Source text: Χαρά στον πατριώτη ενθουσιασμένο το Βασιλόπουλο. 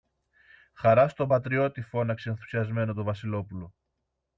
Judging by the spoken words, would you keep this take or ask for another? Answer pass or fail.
fail